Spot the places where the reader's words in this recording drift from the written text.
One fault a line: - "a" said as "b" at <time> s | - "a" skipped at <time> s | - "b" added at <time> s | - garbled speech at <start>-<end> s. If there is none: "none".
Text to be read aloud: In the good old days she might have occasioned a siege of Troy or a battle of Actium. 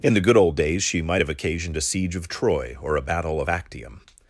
none